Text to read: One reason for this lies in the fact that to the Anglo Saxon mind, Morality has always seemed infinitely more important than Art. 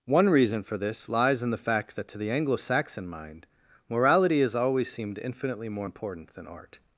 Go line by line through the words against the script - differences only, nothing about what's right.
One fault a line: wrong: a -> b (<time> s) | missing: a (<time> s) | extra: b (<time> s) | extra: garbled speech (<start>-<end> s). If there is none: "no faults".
no faults